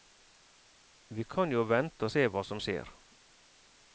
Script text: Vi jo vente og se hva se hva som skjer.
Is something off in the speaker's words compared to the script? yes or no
yes